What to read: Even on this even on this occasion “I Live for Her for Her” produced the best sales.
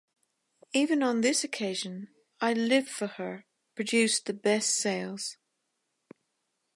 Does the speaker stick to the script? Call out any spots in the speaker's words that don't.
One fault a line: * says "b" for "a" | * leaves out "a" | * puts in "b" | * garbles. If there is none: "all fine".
* leaves out "even on this"
* leaves out "for Her"